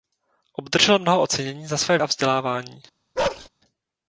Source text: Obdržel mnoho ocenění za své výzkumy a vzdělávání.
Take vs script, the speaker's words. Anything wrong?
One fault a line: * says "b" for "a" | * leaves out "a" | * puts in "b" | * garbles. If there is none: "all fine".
* leaves out "výzkumy"